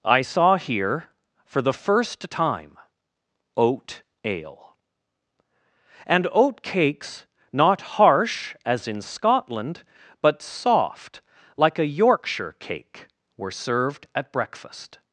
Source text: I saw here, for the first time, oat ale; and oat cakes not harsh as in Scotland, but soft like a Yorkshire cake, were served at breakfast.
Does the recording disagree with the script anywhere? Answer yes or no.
no